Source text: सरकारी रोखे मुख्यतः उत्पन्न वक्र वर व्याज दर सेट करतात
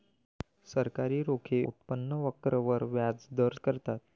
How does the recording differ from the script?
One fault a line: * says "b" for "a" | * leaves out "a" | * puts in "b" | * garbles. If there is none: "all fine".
* leaves out "मुख्यतः"
* leaves out "सेट"